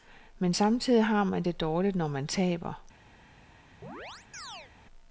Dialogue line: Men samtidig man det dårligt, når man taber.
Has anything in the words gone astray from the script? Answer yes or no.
yes